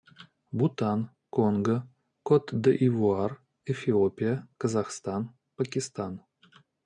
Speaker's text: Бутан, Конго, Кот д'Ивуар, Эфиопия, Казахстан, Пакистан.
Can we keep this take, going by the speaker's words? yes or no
yes